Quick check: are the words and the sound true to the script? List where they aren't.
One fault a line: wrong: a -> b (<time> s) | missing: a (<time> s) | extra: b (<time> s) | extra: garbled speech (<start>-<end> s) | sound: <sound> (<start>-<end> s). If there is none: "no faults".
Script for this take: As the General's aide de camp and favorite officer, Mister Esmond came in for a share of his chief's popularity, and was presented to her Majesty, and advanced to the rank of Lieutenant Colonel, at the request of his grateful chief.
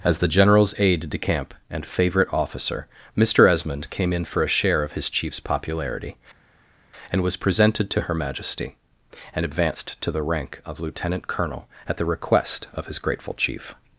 no faults